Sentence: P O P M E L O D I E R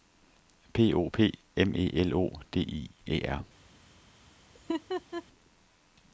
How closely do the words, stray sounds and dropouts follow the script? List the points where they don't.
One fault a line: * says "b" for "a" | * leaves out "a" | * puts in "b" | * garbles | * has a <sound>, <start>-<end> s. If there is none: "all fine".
* has a laugh, 4.5-5.2 s